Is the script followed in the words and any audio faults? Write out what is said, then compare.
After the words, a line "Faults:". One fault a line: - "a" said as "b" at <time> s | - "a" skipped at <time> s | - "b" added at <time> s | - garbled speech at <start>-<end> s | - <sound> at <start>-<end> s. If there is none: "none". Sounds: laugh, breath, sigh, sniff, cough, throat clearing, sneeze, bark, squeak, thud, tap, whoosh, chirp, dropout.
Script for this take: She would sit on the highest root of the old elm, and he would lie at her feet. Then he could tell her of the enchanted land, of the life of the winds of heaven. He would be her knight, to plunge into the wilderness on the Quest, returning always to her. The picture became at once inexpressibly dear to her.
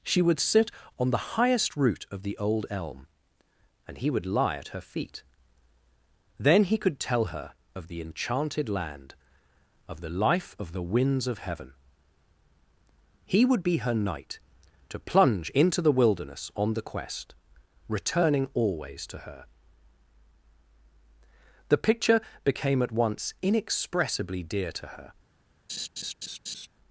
She would sit on the highest root of the old elm, and he would lie at her feet. Then he could tell her of the enchanted land, of the life of the winds of heaven. He would be her knight, to plunge into the wilderness on the Quest, returning always to her. The picture became at once inexpressibly dear to her.
Faults:
- laugh at 25.7-26.7 s